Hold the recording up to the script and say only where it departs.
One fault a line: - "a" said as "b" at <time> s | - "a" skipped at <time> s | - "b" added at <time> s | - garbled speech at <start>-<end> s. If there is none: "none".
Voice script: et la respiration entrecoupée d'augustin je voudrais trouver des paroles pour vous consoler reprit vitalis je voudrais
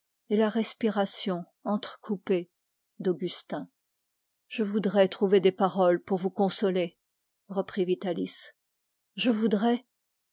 none